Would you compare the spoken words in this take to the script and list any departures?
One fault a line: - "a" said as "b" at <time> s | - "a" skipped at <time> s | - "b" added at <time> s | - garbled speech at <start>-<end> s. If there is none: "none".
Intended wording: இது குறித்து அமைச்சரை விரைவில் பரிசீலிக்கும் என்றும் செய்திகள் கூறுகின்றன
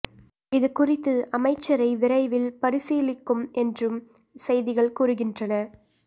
none